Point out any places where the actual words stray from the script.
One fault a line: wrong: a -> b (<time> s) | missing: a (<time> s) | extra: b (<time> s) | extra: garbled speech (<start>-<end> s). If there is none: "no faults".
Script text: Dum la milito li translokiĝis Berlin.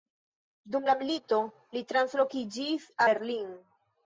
no faults